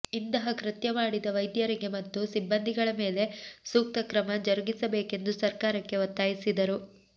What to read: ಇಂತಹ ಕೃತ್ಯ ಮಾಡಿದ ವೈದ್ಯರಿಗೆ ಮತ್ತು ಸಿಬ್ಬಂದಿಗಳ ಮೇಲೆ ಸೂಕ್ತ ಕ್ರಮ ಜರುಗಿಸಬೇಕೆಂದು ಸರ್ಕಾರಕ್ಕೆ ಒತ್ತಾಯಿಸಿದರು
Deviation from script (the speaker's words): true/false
false